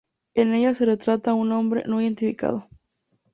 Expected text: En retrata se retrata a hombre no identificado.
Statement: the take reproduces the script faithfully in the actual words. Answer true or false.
false